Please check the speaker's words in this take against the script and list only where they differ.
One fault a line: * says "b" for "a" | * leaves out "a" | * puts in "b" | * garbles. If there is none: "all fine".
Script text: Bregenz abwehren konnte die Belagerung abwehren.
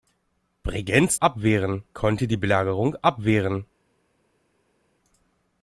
all fine